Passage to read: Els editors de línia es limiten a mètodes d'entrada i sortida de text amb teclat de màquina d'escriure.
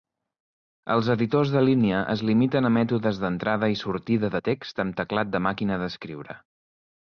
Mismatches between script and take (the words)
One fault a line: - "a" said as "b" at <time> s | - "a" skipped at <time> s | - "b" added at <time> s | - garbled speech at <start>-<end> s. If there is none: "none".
none